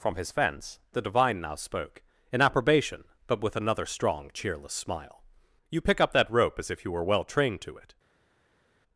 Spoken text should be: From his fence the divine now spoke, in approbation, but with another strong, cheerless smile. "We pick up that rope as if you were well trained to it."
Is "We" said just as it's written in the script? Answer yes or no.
no